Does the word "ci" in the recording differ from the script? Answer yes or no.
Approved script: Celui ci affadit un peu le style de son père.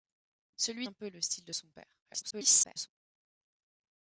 yes